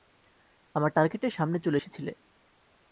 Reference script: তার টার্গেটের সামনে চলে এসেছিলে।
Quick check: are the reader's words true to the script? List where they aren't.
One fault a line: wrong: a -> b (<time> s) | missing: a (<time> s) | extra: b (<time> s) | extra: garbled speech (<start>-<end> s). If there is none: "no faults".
wrong: তার -> আমার (0.8 s)